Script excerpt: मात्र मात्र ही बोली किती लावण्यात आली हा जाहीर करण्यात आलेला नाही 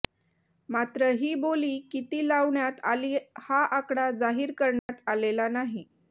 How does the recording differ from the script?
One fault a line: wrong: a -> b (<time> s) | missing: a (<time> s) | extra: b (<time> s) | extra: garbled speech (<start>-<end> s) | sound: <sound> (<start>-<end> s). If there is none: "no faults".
missing: मात्र (1.1 s)
extra: आकडा (3.8 s)
sound: dropout (4.8-4.9 s)